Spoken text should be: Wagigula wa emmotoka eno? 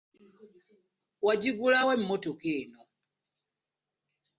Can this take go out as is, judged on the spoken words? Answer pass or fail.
pass